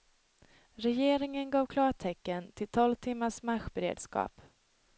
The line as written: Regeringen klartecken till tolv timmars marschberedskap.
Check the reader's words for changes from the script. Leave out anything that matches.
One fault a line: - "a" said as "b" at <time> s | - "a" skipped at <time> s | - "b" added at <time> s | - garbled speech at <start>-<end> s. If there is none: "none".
- "gav" added at 1.5 s